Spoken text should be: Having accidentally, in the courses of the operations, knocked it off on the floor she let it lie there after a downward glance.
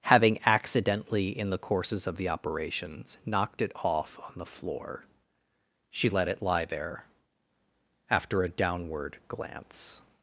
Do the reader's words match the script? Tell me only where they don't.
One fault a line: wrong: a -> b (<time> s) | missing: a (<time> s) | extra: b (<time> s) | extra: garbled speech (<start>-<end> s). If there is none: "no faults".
no faults